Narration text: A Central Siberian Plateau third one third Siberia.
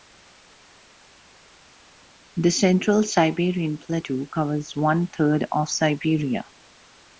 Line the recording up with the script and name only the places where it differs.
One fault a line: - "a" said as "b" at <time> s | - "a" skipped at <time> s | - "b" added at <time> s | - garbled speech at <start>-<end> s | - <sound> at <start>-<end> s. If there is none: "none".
- "A" said as "The" at 2.4 s
- "third" said as "covers" at 4.3 s
- "of" added at 5.5 s